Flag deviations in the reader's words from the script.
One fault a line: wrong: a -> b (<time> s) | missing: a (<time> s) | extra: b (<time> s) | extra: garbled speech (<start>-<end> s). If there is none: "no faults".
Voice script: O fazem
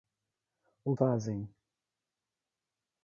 no faults